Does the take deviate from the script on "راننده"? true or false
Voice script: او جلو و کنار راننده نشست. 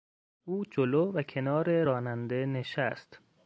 false